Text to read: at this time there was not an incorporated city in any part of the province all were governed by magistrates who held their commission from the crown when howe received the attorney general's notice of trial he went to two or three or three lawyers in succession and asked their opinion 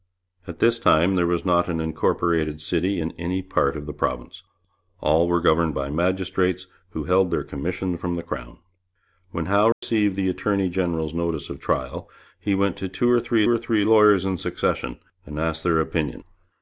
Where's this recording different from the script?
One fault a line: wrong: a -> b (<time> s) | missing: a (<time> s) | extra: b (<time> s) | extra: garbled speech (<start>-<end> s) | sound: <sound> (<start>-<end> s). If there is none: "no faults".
sound: dropout (9.7-9.8 s)